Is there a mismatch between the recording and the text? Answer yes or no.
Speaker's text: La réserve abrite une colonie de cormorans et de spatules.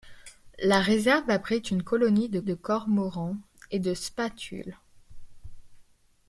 yes